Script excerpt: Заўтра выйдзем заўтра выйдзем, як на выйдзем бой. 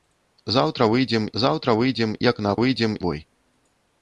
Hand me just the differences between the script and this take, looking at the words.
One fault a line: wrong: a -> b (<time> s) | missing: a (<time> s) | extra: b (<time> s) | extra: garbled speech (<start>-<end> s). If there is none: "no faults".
no faults